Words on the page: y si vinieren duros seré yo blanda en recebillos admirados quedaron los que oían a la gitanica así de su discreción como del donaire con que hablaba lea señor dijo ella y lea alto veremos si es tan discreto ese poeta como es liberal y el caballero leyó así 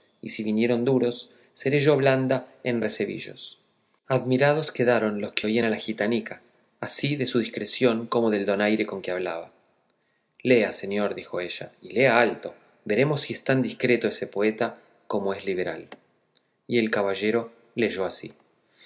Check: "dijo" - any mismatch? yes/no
no